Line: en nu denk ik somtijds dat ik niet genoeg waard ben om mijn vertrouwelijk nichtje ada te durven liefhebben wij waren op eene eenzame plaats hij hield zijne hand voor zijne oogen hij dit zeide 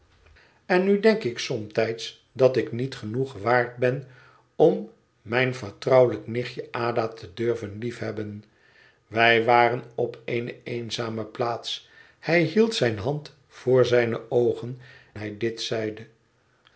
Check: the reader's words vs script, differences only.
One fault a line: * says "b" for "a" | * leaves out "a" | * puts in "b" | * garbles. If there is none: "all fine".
all fine